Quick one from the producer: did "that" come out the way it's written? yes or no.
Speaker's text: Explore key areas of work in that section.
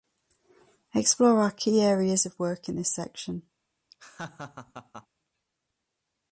no